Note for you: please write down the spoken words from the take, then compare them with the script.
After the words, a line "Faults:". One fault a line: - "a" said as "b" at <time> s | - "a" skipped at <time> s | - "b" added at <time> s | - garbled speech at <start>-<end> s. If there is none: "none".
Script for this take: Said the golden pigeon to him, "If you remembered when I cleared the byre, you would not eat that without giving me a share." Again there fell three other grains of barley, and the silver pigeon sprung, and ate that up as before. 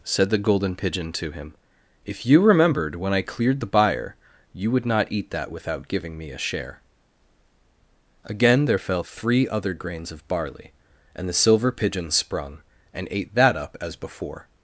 Said the golden pigeon to him, "If you remembered when I cleared the byre, you would not eat that without giving me a share." Again there fell three other grains of barley, and the silver pigeon sprung, and ate that up as before.
Faults:
none